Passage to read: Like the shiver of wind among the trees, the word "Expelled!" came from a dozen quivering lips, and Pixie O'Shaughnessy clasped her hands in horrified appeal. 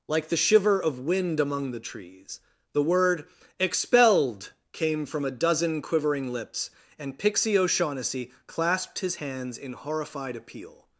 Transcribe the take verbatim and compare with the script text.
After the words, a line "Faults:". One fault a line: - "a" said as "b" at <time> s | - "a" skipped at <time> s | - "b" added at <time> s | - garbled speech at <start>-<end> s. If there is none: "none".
Like the shiver of wind among the trees, the word "Expelled!" came from a dozen quivering lips, and Pixie O'Shaughnessy clasped his hands in horrified appeal.
Faults:
- "her" said as "his" at 9.0 s